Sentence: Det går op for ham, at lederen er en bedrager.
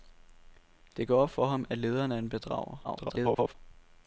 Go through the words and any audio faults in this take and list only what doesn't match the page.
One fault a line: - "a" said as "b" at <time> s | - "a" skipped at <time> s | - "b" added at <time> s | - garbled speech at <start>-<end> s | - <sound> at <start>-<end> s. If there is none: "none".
- garbled speech at 2.8-3.5 s